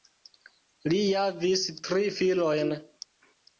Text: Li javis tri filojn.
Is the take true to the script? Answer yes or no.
yes